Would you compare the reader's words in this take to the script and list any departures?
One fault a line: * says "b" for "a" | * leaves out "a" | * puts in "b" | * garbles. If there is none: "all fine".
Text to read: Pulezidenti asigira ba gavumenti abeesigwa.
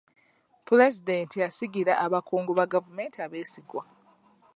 * puts in "abakungu"